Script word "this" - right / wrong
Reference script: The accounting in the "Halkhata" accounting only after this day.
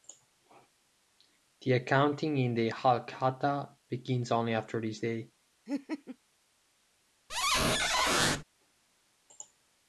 right